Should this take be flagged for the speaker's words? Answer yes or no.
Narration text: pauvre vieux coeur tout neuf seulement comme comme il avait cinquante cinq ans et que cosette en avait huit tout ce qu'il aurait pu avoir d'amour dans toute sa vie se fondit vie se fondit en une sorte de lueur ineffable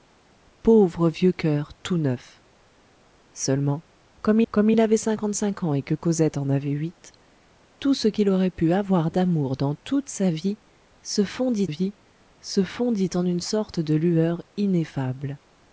no